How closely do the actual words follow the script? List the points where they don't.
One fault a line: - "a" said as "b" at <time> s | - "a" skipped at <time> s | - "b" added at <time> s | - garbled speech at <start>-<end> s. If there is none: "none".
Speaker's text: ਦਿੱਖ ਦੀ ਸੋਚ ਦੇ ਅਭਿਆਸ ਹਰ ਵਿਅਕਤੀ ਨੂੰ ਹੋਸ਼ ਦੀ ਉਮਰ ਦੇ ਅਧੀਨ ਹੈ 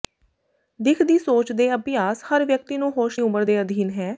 - "ਦੀ" skipped at 3.2 s